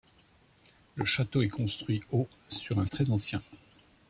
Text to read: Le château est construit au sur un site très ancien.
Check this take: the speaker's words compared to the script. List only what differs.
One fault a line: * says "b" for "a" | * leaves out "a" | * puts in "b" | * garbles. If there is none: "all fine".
* leaves out "site"